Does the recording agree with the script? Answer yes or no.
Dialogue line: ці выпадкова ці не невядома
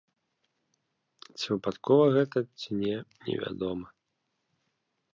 no